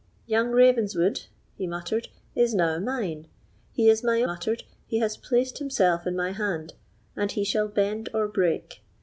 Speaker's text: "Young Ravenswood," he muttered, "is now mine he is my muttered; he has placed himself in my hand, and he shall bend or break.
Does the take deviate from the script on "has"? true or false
false